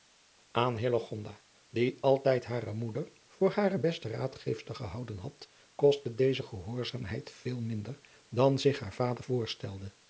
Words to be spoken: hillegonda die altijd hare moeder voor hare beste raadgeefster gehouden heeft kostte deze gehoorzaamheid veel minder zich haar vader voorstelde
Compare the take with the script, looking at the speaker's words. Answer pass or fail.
fail